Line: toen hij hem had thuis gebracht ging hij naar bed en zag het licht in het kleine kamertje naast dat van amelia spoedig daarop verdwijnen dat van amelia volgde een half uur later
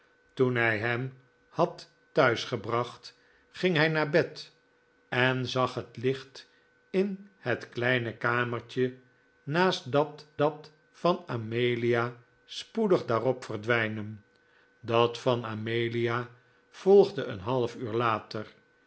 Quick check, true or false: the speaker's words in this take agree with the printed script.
false